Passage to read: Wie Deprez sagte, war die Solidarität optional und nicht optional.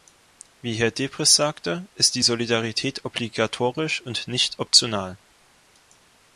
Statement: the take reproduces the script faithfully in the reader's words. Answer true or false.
false